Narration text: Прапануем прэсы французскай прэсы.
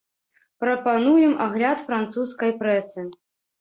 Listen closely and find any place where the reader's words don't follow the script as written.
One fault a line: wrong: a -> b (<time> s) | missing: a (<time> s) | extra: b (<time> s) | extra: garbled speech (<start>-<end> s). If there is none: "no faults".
wrong: прэсы -> агляд (1.4 s)